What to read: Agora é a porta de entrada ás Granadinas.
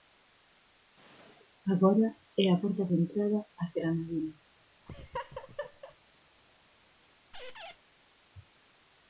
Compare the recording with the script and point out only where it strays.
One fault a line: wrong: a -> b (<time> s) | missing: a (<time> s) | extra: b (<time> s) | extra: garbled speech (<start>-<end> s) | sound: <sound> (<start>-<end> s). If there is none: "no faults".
sound: laugh (4.8-5.9 s)
sound: squeak (7.3-7.8 s)